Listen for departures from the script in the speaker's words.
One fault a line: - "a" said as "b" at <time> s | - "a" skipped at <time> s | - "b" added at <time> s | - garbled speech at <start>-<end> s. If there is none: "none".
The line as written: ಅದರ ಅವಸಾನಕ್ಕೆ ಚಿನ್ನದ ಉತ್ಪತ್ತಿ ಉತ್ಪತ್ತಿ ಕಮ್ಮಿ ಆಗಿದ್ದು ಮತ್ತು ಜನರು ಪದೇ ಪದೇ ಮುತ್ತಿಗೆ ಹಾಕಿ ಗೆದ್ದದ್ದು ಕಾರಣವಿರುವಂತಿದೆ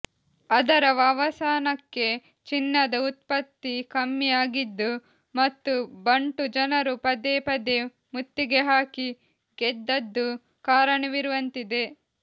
- "ಉತ್ಪತ್ತಿ" skipped at 3.7 s
- "ಬಂಟು" added at 6.1 s